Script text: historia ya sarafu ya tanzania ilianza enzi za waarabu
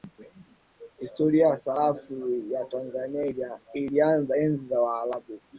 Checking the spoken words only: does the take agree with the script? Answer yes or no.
yes